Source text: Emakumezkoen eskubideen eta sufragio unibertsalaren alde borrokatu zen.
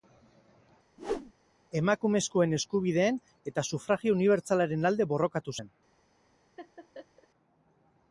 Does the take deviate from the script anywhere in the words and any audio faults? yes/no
yes